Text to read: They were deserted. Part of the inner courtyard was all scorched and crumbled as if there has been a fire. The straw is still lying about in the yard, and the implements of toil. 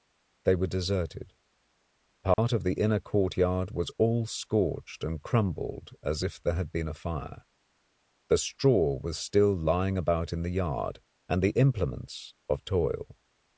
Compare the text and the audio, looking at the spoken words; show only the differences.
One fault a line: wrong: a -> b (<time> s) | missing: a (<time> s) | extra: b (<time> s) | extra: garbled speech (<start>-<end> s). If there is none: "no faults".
wrong: has -> had (6.5 s)
wrong: is -> was (9.0 s)